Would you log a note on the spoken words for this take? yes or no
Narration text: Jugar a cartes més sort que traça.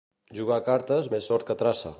no